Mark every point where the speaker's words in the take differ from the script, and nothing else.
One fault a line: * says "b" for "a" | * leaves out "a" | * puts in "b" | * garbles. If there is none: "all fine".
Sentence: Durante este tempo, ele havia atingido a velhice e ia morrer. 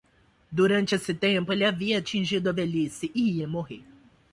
* says "esse" for "este"